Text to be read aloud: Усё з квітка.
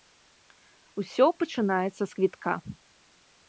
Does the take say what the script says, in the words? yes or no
no